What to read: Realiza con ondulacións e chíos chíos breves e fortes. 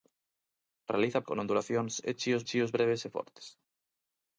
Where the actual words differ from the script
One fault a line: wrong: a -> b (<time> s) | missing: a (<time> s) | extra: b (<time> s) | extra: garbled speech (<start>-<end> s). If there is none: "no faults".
no faults